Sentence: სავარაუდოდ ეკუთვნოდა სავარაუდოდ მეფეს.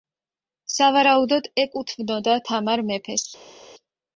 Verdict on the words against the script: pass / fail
fail